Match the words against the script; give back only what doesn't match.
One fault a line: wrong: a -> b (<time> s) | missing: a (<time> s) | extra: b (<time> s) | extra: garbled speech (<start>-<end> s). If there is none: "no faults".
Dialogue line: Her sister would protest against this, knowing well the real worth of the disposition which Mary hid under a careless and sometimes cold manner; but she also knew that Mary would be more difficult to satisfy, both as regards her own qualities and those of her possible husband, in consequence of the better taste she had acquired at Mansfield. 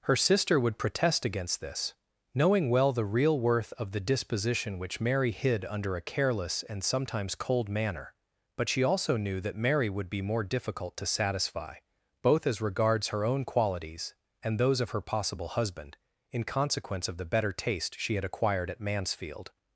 no faults